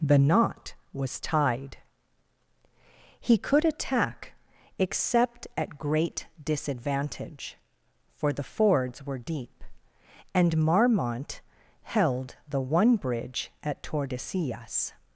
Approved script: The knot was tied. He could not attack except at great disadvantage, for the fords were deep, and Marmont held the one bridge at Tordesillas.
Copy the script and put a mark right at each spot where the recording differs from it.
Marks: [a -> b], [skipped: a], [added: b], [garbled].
The knot was tied. He could [skipped: not] attack except at great disadvantage, for the fords were deep, and Marmont held the one bridge at Tordesillas.